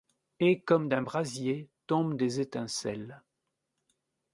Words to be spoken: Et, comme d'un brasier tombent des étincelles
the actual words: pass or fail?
pass